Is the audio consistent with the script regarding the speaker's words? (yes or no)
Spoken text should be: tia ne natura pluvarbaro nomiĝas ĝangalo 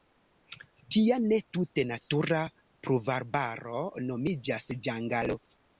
no